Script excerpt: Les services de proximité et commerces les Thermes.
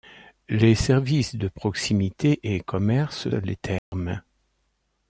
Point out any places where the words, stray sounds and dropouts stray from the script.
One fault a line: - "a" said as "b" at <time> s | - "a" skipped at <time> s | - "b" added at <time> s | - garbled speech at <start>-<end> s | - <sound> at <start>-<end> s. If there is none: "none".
- dropout at 3.8-3.9 s